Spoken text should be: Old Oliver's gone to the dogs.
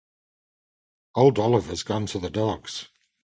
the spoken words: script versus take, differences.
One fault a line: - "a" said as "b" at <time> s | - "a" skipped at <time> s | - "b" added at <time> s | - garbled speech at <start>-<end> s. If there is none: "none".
none